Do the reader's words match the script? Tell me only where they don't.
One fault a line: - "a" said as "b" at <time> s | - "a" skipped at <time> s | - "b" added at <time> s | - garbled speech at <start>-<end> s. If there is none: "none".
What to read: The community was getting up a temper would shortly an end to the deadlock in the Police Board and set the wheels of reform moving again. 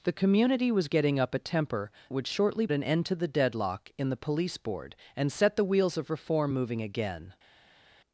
none